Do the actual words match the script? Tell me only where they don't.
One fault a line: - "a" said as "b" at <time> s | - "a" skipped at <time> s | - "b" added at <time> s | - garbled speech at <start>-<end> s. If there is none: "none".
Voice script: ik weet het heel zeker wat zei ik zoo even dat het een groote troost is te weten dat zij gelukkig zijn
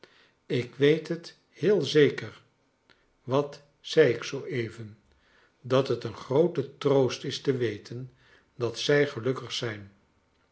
none